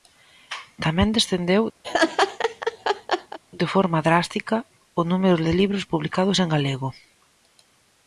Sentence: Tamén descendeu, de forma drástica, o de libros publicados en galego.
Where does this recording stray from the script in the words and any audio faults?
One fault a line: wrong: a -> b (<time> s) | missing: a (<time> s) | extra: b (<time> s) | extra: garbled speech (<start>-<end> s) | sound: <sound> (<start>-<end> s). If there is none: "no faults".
sound: laugh (1.8-3.4 s)
extra: número (5.1 s)